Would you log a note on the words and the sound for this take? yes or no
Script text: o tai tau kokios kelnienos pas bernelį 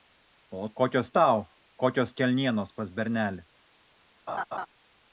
yes